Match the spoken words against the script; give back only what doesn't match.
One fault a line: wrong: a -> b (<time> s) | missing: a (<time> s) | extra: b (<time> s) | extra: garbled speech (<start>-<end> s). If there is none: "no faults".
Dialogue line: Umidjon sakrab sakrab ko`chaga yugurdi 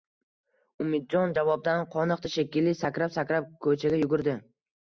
extra: javobdan qoniqdi shekilli (1.4 s)